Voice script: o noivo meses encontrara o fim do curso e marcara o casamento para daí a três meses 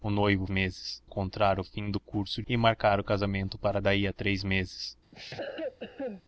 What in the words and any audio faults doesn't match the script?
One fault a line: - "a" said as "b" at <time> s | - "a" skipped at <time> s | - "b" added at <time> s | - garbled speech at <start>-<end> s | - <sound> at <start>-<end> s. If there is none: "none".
- cough at 5.1-6.2 s